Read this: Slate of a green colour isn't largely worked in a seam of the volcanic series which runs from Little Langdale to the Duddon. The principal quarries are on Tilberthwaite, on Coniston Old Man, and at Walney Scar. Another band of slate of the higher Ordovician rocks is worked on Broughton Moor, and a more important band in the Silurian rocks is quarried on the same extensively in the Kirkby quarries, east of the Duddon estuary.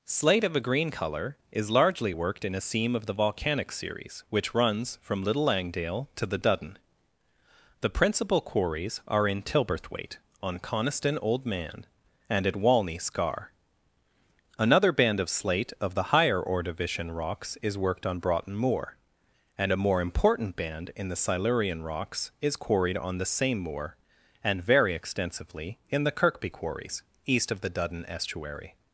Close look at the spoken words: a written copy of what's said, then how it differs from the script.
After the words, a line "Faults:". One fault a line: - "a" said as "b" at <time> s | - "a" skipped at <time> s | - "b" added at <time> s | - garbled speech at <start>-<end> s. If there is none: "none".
Slate of a green colour is largely worked in a seam of the volcanic series which runs from Little Langdale to the Duddon. The principal quarries are in Tilberthwaite, on Coniston Old Man, and at Walney Scar. Another band of slate of the higher Ordovician rocks is worked on Broughton Moor, and a more important band in the Silurian rocks is quarried on the same moor, and very extensively in the Kirkby quarries, east of the Duddon estuary.
Faults:
- "isn't" said as "is" at 1.5 s
- "on" said as "in" at 9.3 s
- "moor and very" added at 23.6 s